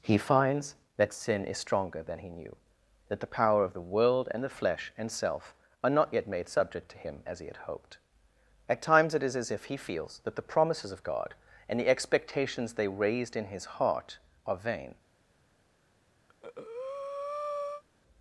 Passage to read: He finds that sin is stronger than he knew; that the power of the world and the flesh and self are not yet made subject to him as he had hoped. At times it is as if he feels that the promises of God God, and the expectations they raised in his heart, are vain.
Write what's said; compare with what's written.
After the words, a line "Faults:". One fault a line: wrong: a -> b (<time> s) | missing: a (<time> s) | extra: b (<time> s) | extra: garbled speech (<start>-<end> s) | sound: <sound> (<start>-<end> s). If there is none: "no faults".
He finds that sin is stronger than he knew; that the power of the world and the flesh and self are not yet made subject to him as he had hoped. At times it is as if he feels that the promises of God, and the expectations they raised in his heart, are vain.
Faults:
missing: God (11.3 s)
sound: breath (16.3-17.8 s)